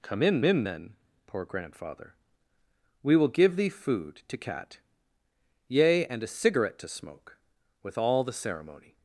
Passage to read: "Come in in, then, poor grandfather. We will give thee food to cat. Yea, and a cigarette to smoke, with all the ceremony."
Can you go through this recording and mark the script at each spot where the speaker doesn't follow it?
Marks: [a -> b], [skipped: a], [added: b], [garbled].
"Come in in, then, poor grandfather. We will give thee food to cat. Yea, and a cigarette to smoke, with all the ceremony."